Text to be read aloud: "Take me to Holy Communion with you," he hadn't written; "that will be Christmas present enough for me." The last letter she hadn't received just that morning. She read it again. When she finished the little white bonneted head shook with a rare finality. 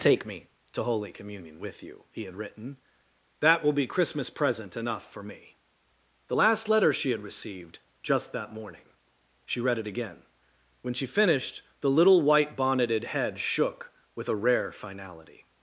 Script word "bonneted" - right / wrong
right